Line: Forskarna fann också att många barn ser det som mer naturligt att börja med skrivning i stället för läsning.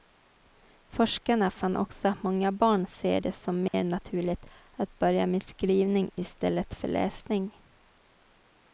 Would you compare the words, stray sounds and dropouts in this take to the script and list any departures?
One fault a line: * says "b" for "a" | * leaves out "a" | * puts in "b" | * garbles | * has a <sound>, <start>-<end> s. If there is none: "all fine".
* has a dropout, 3.7-3.7 s